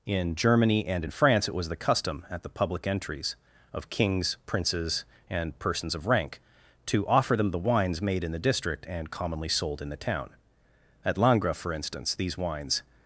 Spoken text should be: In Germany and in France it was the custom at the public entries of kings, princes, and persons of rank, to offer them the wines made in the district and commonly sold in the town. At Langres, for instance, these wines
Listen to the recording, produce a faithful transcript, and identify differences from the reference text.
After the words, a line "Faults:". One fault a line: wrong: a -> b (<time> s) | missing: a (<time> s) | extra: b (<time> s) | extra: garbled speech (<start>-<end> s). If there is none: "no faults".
In Germany and in France it was the custom at the public entries of kings, princes, and persons of rank, to offer them the wines made in the district and commonly sold in the town. At Langres, for instance, these wines
Faults:
no faults